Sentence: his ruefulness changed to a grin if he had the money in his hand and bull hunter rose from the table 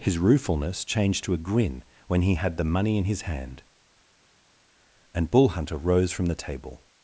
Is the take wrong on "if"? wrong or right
wrong